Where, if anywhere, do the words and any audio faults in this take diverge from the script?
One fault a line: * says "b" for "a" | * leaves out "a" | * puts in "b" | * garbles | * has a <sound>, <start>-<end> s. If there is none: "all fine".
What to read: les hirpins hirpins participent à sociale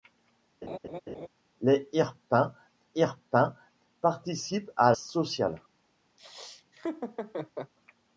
* has a laugh, 0.6-1.3 s
* has a laugh, 6.2-7.7 s